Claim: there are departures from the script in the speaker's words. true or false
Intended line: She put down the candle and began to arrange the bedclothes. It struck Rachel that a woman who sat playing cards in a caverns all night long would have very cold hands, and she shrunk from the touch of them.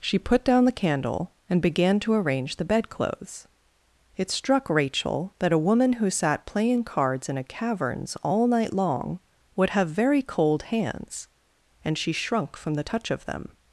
false